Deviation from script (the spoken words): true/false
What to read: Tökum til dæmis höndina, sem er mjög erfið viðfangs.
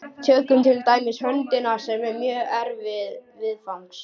false